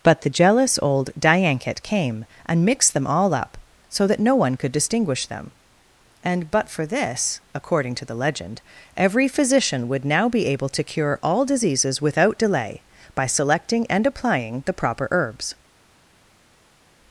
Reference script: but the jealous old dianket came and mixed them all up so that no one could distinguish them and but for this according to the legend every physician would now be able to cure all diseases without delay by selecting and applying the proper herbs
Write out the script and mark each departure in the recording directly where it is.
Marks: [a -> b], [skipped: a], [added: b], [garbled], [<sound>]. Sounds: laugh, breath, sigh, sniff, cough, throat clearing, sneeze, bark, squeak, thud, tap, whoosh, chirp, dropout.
but the jealous old dianket came and mixed them all up so that no one could distinguish them and but for this according to the legend every physician would now be able to cure all diseases without delay by selecting and applying the proper herbs